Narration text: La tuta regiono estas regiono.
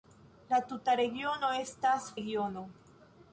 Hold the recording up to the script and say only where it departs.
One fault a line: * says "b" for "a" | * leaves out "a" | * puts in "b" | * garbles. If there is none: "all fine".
all fine